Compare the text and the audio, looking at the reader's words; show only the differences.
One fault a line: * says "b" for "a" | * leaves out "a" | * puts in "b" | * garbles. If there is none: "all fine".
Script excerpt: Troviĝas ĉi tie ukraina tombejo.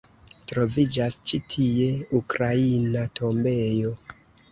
all fine